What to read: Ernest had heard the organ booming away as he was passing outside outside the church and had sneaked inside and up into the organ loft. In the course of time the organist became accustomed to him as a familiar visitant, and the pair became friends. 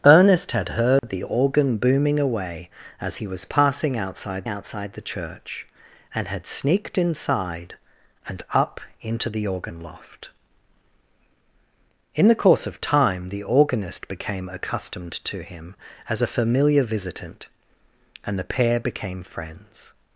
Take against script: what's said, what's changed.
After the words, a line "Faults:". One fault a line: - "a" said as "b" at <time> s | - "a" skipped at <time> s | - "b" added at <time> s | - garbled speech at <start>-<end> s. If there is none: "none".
Ernest had heard the organ booming away as he was passing outside outside the church and had sneaked inside and up into the organ loft. In the course of time the organist became accustomed to him as a familiar visitant, and the pair became friends.
Faults:
none